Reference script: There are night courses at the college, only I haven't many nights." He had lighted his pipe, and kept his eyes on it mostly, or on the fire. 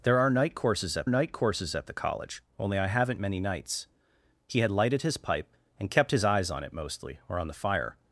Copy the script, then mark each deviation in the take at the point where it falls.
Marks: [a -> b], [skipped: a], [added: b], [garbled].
There are night courses at [added: night courses at] the college, only I haven't many nights." He had lighted his pipe, and kept his eyes on it mostly, or on the fire.